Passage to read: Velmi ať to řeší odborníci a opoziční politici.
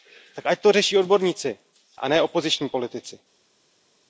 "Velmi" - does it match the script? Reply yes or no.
no